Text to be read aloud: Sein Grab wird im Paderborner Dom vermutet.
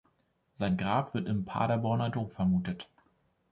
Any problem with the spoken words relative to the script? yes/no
no